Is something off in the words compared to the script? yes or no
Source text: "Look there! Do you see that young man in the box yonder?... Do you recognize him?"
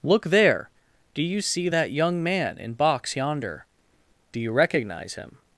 yes